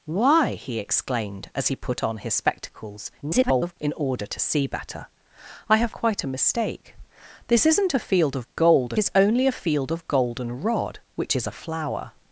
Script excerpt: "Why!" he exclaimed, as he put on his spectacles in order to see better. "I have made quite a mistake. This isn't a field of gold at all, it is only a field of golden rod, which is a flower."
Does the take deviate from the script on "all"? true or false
true